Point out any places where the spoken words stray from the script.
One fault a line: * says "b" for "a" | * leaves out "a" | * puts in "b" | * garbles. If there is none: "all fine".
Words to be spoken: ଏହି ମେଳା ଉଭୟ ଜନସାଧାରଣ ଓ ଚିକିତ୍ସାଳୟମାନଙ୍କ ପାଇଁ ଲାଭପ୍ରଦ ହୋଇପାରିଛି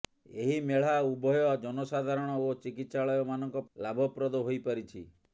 * leaves out "ପାଇଁ"